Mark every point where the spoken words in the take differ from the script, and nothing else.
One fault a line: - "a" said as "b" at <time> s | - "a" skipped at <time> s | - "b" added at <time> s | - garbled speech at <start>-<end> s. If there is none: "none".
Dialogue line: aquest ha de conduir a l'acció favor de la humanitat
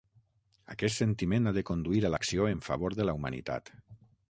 - "sentiment" added at 1.0 s
- "en" added at 2.5 s